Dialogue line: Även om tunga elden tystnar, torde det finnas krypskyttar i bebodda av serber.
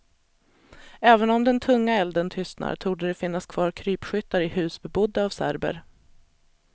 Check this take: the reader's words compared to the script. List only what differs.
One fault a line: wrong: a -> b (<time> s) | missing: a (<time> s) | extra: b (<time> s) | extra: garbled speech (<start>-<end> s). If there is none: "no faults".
extra: den (1.4 s)
extra: kvar (3.5 s)
extra: hus (4.5 s)